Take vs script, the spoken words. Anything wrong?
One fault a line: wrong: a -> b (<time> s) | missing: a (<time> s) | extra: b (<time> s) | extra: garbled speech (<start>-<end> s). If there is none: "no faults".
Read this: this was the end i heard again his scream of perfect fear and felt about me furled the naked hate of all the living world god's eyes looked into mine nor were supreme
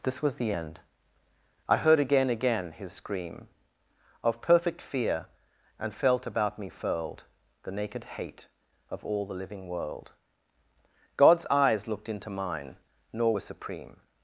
extra: again (2.3 s)